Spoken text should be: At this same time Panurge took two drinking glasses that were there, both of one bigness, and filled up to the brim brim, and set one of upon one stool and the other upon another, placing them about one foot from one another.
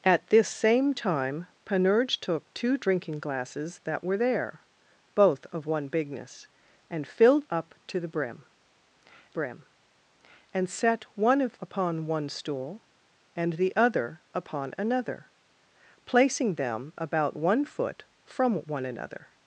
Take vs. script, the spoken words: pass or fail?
pass